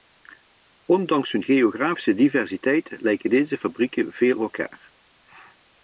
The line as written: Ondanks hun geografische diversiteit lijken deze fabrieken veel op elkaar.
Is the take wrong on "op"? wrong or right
wrong